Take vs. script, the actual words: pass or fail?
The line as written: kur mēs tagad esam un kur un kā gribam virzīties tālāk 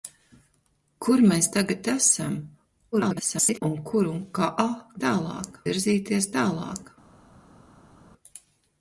fail